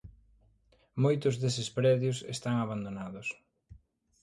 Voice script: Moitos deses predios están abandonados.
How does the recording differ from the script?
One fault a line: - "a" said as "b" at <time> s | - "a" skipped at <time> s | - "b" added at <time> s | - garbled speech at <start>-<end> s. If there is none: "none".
none